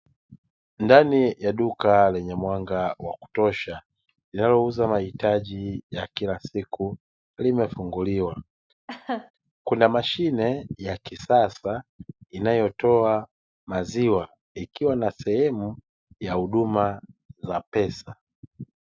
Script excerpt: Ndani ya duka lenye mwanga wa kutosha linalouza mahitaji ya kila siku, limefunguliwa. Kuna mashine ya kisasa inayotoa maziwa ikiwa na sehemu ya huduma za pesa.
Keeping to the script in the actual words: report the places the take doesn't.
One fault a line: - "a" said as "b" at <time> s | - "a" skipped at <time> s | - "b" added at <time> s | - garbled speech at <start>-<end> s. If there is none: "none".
none